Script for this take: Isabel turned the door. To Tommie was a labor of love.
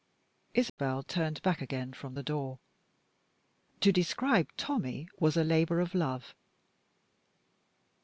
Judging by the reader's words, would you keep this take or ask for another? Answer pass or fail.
fail